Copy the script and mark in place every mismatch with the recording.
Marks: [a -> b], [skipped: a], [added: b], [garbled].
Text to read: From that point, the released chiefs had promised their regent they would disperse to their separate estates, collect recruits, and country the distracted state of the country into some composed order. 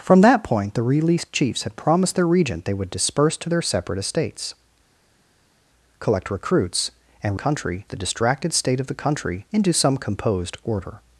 From that point, the released chiefs had promised their regent they would disperse to their separate estates, collect recruits, and country the distracted state of the country into some composed order.